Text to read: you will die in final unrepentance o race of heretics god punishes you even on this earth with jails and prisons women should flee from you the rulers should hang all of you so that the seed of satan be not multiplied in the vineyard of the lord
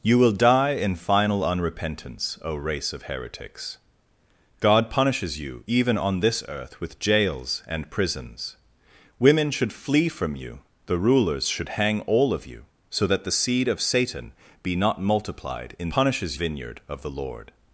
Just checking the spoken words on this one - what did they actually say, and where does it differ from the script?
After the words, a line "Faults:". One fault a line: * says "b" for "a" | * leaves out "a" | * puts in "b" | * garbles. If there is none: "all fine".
you will die in final unrepentance o race of heretics god punishes you even on this earth with jails and prisons women should flee from you the rulers should hang all of you so that the seed of satan be not multiplied in punishes vineyard of the lord
Faults:
* says "punishes" for "the"